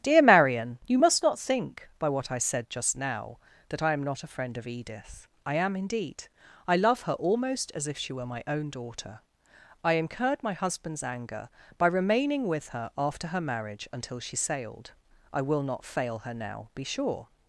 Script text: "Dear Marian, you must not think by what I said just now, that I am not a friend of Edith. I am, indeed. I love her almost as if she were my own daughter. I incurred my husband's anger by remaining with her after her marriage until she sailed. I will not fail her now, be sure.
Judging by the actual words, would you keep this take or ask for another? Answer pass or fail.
pass